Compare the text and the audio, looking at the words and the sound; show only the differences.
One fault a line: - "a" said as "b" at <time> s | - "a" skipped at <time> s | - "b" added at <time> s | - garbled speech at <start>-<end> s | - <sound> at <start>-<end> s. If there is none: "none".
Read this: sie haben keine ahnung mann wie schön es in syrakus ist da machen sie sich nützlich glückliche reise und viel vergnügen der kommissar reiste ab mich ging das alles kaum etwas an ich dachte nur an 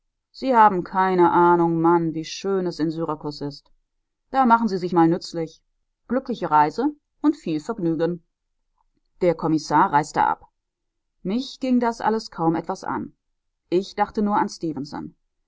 - "mal" added at 4.9 s